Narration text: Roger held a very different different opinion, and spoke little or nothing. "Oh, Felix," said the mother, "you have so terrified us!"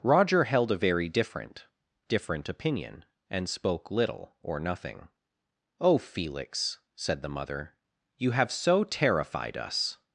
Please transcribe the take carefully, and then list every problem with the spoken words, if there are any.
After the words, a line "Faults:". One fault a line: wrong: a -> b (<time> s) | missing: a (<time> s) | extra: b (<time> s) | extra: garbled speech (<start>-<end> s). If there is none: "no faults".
Roger held a very different different opinion, and spoke little or nothing. "Oh, Felix," said the mother, "you have so terrified us!"
Faults:
no faults